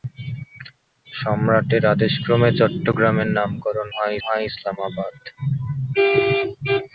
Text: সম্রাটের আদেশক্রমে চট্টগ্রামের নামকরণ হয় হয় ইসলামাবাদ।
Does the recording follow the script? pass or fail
pass